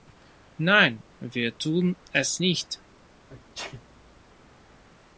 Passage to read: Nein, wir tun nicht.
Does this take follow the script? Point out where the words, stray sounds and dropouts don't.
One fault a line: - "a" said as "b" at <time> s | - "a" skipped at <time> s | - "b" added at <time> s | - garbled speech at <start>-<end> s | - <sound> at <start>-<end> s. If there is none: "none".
- "es" added at 2.1 s
- sneeze at 3.3-4.1 s